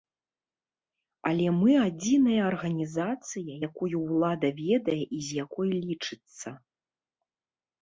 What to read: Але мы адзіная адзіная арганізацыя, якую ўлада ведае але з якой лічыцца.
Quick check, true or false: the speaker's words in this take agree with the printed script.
false